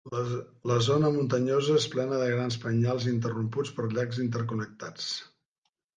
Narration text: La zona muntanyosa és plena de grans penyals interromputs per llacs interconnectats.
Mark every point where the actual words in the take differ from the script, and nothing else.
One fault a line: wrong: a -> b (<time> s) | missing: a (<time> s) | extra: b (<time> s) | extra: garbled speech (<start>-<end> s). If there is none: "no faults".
no faults